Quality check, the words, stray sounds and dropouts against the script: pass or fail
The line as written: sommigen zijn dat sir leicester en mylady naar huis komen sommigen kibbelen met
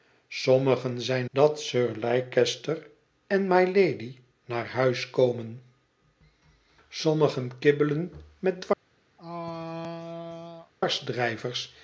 fail